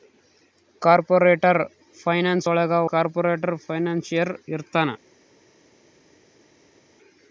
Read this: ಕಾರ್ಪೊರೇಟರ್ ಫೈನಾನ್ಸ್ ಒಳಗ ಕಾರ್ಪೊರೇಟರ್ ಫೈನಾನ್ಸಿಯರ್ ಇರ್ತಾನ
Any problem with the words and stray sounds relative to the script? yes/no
no